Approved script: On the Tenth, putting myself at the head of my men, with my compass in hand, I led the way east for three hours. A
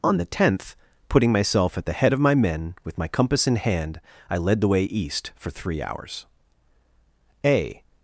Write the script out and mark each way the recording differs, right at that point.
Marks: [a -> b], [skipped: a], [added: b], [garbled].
On the Tenth, putting myself at the head of my men, with my compass in hand, I led the way east for three hours. A